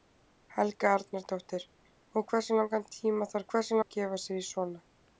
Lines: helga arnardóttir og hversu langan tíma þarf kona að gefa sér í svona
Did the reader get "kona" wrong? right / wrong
wrong